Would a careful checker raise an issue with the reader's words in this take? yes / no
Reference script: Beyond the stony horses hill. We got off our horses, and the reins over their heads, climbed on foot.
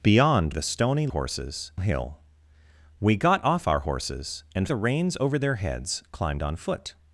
no